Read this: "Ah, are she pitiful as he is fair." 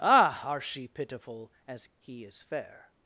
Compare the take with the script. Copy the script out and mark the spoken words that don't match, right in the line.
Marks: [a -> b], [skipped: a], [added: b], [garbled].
"Ah, are she pitiful as he is fair."